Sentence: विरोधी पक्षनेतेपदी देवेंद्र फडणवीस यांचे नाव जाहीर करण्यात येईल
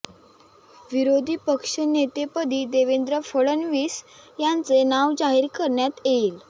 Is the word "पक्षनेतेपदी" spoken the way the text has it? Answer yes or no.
yes